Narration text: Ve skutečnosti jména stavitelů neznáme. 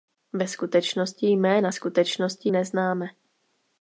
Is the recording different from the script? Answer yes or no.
yes